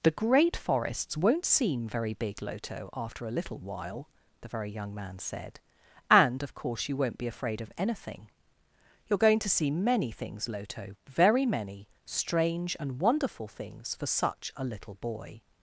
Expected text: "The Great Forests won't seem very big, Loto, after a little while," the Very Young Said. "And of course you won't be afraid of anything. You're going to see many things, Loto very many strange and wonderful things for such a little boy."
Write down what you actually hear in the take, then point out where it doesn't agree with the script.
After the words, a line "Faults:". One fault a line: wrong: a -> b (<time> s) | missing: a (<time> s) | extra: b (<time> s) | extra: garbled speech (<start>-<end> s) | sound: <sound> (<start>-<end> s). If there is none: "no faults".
"The Great Forests won't seem very big, Loto, after a little while," the Very Young Man said. "And of course you won't be afraid of anything. You're going to see many things, Loto very many strange and wonderful things for such a little boy."
Faults:
extra: Man (5.0 s)